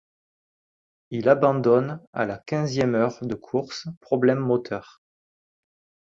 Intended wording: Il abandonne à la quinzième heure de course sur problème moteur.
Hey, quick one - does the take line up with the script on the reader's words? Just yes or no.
no